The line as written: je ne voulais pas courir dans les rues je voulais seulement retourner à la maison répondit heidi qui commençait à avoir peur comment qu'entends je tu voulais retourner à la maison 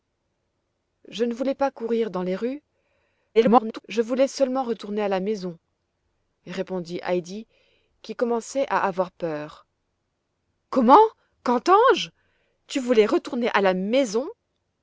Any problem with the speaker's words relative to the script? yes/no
yes